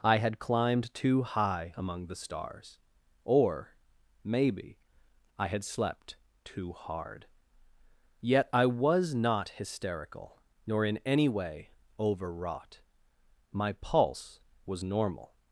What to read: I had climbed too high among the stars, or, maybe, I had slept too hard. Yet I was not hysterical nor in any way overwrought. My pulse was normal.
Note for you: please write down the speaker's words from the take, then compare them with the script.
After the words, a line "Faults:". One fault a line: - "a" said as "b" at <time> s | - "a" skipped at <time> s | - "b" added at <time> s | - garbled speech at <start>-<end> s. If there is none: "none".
I had climbed too high among the stars, or, maybe, I had slept too hard. Yet I was not hysterical nor in any way overwrought. My pulse was normal.
Faults:
none